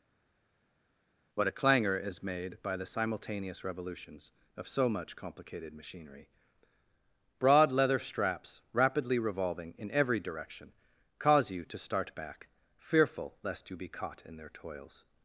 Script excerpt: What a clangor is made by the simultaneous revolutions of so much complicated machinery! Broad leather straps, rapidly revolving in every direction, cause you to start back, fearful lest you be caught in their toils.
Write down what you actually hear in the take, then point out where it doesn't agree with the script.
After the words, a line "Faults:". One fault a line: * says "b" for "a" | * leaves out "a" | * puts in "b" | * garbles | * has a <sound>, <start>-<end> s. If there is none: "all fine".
What a clangor is made by the simultaneous revolutions of so much complicated machinery! Broad leather straps, rapidly revolving in every direction, cause you to start back, fearful lest you be caught in their toils.
Faults:
all fine